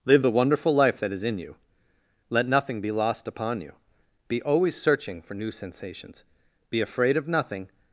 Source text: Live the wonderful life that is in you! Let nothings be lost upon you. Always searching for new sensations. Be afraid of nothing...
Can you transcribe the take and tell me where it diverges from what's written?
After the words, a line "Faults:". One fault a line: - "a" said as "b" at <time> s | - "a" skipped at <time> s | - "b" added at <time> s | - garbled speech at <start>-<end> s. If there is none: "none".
Live the wonderful life that is in you! Let nothing be lost upon you. Be always searching for new sensations. Be afraid of nothing...
Faults:
- "nothings" said as "nothing" at 2.5 s
- "Be" added at 4.3 s